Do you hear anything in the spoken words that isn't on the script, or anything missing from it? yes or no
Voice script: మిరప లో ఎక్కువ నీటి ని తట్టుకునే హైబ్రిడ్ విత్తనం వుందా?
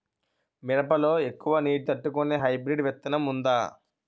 yes